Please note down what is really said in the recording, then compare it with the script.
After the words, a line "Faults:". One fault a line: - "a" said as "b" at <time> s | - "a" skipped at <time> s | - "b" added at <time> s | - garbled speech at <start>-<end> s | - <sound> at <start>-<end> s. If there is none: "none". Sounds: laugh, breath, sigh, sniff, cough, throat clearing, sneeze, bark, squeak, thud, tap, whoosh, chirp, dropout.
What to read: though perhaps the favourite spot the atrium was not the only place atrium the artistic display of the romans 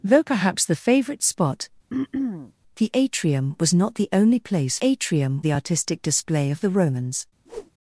though perhaps the favourite spot the atrium was not the only place atrium the artistic display of the romans
Faults:
- throat clearing at 1.9-2.5 s
- whoosh at 7.5-7.7 s